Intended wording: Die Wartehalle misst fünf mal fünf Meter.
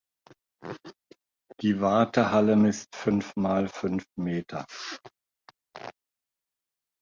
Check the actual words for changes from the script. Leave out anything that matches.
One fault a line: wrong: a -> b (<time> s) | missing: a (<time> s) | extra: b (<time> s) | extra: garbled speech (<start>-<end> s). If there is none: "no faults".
no faults